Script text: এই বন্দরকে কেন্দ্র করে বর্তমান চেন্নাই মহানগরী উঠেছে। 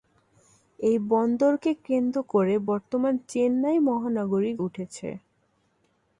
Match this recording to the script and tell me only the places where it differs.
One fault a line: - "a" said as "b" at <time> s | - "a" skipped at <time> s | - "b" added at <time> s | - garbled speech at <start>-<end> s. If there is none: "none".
none